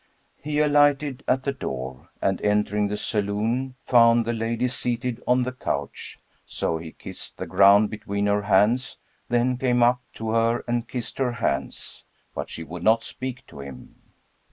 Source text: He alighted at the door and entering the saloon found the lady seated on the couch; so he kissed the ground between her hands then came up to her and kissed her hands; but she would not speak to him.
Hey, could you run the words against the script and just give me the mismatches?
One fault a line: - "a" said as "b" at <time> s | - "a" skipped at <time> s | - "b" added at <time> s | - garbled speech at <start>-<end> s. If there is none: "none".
none